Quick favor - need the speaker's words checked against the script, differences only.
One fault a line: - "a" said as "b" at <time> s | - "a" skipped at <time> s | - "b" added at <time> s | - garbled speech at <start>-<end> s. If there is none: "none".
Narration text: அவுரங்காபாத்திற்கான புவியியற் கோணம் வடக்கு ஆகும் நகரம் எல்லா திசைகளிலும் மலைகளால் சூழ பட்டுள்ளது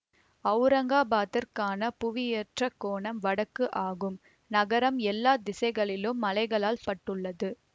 - "சூழ" skipped at 6.8 s